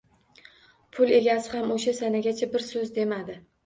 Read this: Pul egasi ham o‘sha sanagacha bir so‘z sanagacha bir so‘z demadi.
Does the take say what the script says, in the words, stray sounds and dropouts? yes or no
no